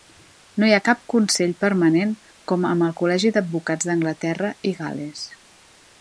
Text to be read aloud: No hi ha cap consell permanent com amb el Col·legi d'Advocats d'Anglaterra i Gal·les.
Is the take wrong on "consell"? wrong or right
right